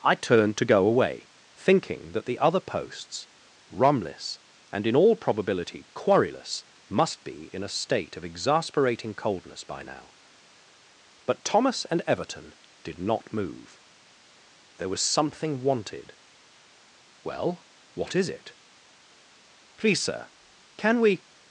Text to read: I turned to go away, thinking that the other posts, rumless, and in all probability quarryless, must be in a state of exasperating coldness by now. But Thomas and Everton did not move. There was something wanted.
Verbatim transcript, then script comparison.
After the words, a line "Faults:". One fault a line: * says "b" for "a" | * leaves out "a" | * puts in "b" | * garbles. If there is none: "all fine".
I turned to go away, thinking that the other posts, rumless, and in all probability quarryless, must be in a state of exasperating coldness by now. But Thomas and Everton did not move. There was something wanted. "Well, what is it?" "Please sir, can we
Faults:
* puts in "Well what is it Please sir can we"